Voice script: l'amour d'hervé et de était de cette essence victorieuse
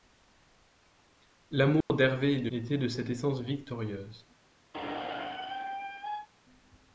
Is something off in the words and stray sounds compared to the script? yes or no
yes